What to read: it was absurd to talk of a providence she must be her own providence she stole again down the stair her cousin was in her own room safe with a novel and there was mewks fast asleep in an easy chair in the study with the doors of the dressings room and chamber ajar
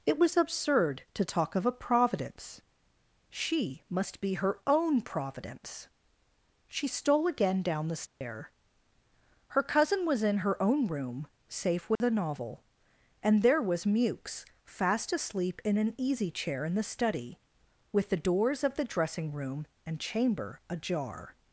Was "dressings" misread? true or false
true